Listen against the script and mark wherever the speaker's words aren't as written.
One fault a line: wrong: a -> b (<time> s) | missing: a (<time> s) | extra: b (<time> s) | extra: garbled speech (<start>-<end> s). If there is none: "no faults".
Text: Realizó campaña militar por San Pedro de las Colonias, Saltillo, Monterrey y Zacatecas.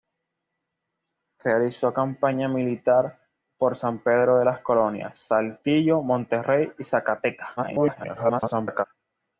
extra: garbled speech (7.6-8.8 s)